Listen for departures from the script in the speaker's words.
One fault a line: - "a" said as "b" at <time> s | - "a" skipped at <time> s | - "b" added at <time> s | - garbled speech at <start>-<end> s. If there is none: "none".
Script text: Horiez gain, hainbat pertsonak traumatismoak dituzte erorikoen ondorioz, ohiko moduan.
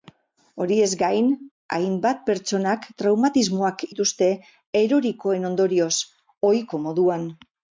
none